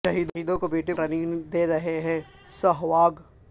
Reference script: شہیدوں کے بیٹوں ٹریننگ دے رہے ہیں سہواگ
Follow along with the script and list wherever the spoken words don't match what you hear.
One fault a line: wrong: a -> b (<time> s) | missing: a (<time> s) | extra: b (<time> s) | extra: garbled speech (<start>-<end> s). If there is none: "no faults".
no faults